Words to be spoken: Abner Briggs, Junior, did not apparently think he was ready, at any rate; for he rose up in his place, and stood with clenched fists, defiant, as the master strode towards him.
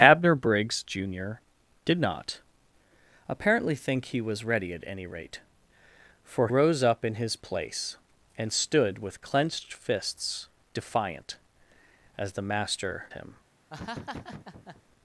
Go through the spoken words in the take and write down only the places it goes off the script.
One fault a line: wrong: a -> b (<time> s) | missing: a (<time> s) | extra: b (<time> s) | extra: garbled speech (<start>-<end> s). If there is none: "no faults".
missing: he (6.5 s)
missing: strode towards (13.1 s)